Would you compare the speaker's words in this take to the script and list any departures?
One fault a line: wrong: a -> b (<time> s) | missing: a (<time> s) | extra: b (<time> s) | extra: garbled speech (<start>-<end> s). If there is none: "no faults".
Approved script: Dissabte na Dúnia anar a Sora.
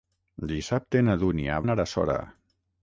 no faults